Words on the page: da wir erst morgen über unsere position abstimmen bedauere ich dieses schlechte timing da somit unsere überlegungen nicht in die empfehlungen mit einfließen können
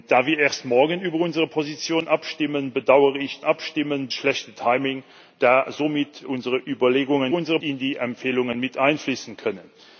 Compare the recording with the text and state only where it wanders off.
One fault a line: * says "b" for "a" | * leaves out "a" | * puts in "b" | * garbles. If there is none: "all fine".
* says "abstimmen" for "dieses"
* says "unsere" for "nicht"